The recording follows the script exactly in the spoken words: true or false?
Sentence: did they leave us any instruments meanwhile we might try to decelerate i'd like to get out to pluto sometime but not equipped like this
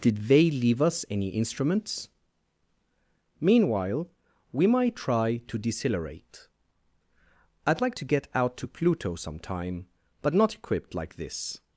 true